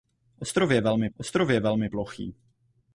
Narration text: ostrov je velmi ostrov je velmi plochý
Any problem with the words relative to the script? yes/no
no